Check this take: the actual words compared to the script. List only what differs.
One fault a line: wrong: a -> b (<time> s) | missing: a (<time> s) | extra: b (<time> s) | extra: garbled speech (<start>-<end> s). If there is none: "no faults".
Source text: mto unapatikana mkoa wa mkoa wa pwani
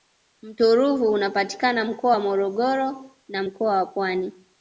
extra: ruvu (0.8 s)
extra: morogoro na (2.2 s)